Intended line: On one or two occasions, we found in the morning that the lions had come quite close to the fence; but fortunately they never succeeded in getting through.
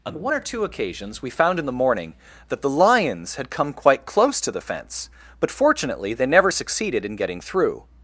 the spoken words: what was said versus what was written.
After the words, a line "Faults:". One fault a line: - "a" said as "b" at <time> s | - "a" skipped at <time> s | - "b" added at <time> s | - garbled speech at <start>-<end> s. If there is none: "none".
On one or two occasions, we found in the morning that the lions had come quite close to the fence; but fortunately they never succeeded in getting through.
Faults:
none